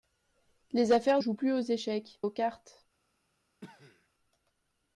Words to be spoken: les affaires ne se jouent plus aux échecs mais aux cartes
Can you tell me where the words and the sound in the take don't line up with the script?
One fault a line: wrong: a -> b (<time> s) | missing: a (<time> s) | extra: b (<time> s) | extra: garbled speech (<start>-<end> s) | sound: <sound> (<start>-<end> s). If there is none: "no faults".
missing: ne se (1.2 s)
missing: mais (2.2 s)
sound: cough (3.6-4.1 s)